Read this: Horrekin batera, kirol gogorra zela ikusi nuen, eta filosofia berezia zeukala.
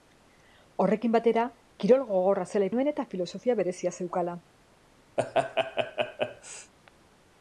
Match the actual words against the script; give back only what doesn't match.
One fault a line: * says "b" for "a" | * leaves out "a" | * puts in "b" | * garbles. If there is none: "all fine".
* leaves out "ikusi"